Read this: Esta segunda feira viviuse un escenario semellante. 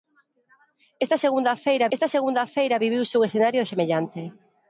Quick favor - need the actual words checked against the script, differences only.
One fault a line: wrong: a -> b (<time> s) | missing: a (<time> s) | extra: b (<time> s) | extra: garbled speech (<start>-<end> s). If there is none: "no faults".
extra: esta segunda feira (2.0 s)